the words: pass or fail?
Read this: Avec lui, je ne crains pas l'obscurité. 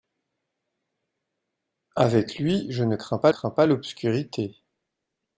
fail